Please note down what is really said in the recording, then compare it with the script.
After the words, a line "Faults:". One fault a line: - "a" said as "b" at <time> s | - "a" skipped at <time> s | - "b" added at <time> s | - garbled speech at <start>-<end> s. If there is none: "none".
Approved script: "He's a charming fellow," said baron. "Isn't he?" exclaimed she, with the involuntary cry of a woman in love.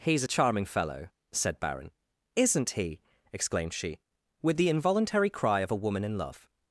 "He's a charming fellow," said baron. "Isn't he?" exclaimed she, with the involuntary cry of a woman in love.
Faults:
none